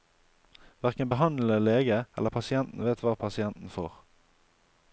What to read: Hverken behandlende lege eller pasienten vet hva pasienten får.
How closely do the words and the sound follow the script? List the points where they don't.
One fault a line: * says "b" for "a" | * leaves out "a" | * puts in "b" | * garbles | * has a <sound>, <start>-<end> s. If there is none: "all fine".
all fine